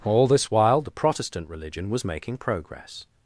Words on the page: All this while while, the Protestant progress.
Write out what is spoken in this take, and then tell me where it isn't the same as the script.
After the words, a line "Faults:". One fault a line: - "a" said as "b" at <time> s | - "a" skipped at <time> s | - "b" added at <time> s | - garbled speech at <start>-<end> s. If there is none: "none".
All this while, the Protestant religion was making progress.
Faults:
- "while" skipped at 0.8 s
- "religion was making" added at 1.5 s